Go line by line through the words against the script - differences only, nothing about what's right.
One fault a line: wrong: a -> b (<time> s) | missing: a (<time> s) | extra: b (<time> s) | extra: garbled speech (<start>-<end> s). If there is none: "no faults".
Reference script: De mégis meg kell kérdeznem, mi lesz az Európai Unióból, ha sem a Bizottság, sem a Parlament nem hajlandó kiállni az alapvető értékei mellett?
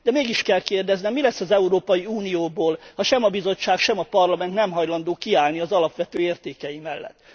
missing: meg (0.4 s)